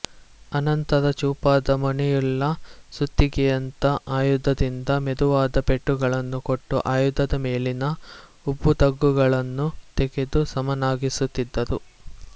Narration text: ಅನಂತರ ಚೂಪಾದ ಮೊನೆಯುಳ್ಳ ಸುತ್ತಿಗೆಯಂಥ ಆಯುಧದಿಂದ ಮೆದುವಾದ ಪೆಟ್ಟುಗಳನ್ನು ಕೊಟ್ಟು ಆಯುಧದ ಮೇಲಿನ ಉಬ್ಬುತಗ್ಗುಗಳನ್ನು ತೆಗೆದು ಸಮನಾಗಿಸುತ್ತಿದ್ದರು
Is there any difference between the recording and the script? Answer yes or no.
no